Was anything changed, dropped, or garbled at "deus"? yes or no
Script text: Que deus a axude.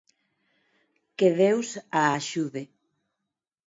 no